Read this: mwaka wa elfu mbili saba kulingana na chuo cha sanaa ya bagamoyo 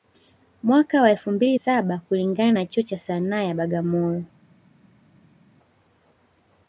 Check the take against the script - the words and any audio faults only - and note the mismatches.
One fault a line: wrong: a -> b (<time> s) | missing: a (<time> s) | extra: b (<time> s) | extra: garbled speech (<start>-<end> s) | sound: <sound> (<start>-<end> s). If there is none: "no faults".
no faults